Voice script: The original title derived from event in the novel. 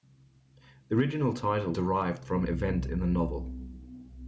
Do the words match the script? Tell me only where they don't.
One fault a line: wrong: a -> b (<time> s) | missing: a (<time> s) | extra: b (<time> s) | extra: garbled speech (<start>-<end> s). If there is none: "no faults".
no faults